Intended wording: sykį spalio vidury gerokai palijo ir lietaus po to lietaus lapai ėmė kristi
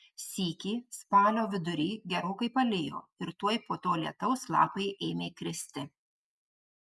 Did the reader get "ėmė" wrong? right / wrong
right